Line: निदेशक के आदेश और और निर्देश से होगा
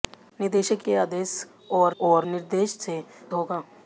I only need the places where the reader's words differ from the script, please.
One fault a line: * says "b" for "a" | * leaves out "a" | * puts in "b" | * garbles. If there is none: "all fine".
all fine